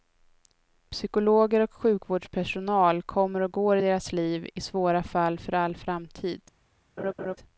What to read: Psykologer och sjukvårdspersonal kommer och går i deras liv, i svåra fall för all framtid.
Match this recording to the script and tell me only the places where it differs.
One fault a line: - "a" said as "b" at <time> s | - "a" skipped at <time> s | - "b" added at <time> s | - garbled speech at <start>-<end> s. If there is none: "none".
none